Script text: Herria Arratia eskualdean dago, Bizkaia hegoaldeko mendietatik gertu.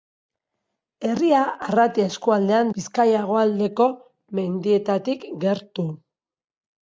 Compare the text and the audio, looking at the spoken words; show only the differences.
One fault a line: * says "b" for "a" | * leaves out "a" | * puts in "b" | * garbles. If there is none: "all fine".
* leaves out "dago"